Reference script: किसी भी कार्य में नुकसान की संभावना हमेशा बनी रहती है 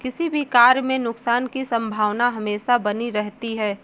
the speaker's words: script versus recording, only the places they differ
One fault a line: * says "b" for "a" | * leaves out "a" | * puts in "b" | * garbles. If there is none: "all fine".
all fine